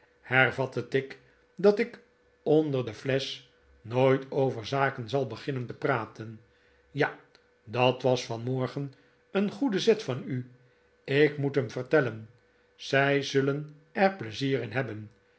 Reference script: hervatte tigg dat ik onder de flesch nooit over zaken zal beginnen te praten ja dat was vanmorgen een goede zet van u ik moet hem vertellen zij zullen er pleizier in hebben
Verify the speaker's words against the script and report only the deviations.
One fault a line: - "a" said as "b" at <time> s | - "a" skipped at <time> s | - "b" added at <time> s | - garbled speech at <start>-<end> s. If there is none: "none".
none